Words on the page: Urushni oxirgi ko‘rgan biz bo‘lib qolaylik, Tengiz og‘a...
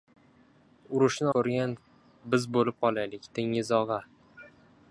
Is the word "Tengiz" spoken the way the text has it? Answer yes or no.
yes